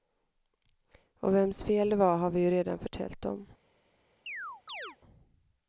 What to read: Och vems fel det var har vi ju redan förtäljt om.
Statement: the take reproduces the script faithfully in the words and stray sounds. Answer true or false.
false